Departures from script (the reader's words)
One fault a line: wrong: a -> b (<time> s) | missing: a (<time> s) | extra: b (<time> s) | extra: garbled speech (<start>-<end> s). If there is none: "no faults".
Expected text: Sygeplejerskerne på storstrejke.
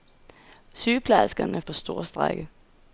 no faults